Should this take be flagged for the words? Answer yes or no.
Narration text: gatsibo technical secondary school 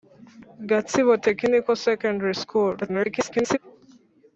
yes